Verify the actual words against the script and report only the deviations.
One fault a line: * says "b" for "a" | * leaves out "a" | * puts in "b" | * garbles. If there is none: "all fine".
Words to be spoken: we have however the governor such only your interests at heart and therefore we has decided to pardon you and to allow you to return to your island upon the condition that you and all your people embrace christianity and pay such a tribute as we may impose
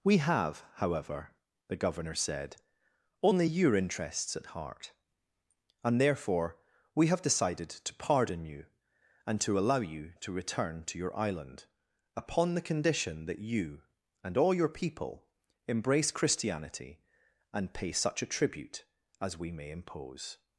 * says "said" for "such"
* says "have" for "has"